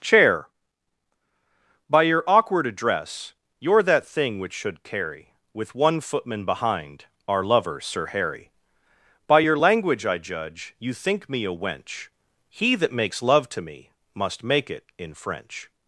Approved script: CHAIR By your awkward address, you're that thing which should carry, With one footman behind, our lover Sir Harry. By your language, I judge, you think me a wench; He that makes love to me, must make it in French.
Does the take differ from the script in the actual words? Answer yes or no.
no